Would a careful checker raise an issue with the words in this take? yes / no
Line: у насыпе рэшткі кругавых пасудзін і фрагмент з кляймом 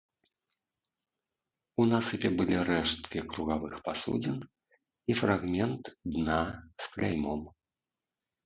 yes